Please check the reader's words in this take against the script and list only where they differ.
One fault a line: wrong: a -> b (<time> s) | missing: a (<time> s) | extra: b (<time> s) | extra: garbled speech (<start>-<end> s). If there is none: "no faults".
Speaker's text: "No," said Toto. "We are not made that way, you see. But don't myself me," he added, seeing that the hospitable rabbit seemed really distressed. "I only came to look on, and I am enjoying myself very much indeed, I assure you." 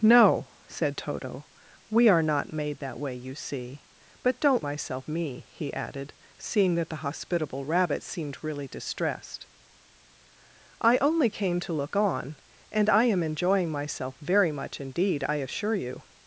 no faults